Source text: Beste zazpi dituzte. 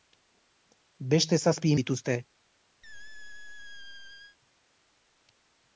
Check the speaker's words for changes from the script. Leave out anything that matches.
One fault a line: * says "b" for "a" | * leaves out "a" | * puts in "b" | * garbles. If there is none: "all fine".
all fine